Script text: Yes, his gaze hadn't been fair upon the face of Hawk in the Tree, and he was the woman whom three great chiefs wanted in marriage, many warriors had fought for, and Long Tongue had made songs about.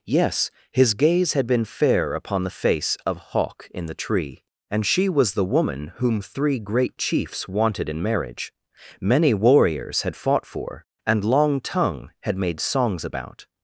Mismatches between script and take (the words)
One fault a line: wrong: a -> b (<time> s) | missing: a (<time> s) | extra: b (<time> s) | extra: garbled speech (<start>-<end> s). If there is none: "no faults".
wrong: hadn't -> had (1.3 s)
wrong: he -> she (4.9 s)